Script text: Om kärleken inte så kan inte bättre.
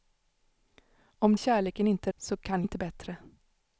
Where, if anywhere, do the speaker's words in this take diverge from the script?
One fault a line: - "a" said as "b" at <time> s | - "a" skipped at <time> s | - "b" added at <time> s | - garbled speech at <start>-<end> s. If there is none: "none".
none